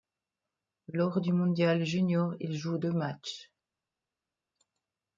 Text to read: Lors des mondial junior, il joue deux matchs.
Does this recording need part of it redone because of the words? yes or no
yes